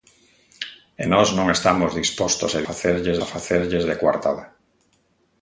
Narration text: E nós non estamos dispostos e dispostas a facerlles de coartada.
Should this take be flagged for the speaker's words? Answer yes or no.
yes